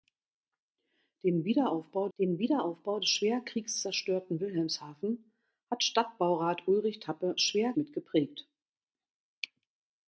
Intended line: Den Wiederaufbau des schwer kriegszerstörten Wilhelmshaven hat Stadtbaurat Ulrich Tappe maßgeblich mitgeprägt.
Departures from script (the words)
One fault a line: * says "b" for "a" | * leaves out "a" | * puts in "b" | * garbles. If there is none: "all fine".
* puts in "den Wiederaufbau"
* says "schwer" for "maßgeblich"